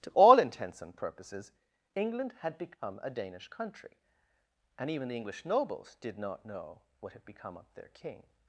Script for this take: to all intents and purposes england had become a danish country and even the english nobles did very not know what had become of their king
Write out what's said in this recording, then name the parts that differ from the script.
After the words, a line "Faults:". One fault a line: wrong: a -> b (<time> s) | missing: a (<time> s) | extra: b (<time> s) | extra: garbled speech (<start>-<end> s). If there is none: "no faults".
to all intents and purposes england had become a danish country and even the english nobles did not know what had become of their king
Faults:
missing: very (6.2 s)